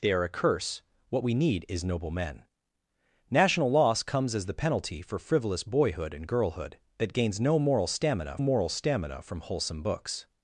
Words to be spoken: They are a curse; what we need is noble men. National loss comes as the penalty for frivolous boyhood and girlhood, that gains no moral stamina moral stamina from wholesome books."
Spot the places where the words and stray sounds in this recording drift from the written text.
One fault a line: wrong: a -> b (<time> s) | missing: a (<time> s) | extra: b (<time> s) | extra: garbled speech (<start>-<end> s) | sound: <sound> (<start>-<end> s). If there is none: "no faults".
no faults